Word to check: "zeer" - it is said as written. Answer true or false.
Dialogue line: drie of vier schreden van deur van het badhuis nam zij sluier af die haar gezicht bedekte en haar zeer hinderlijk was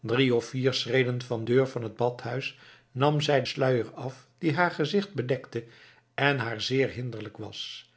true